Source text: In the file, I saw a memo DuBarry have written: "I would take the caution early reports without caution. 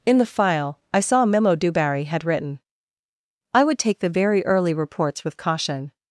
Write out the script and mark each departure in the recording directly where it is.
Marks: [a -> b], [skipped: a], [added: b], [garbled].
In the file, I saw a memo DuBarry [have -> had] written: "I would take the [caution -> very] early reports [without -> with] caution.